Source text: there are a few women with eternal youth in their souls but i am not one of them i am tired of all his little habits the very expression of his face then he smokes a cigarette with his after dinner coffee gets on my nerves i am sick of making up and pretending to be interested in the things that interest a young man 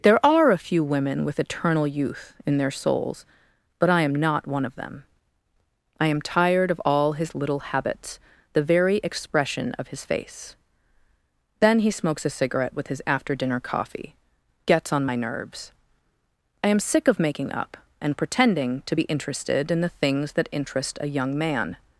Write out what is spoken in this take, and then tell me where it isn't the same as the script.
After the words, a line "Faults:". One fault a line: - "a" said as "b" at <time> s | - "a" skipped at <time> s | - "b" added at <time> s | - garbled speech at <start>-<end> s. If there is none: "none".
there are a few women with eternal youth in their souls but i am not one of them i am tired of all his little habits the very expression of his face then he smokes a cigarette with his after dinner coffee gets on my nerves i am sick of making up and pretending to be interested in the things that interest a young man
Faults:
none